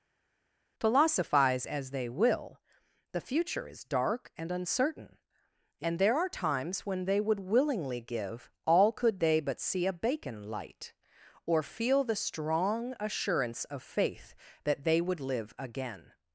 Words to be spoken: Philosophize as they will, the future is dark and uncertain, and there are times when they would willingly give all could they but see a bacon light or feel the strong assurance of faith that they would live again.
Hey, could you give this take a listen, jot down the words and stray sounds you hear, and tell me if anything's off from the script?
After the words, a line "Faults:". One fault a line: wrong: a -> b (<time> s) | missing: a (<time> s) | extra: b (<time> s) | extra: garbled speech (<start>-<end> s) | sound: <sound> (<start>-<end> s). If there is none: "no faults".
Philosophize as they will, the future is dark and uncertain, and there are times when they would willingly give all could they but see a bacon light or feel the strong assurance of faith that they would live again.
Faults:
no faults